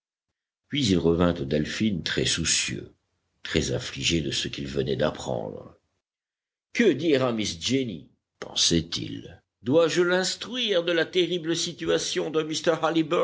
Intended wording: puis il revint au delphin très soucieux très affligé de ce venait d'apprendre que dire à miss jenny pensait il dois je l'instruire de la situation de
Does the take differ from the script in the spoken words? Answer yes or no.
yes